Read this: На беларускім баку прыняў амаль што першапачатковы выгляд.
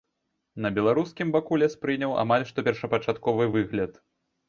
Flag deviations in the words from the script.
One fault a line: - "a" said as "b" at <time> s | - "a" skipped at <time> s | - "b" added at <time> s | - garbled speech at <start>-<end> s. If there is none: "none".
- "лес" added at 1.6 s